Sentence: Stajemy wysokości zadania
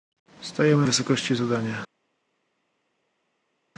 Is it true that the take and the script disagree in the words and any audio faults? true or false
false